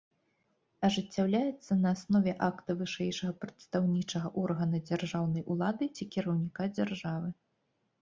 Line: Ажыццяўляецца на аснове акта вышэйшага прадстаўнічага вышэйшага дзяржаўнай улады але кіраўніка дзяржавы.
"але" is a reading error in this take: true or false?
true